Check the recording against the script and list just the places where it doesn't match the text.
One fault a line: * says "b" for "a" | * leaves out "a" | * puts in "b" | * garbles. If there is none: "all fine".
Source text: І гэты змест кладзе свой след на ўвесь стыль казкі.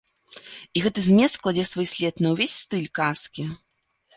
all fine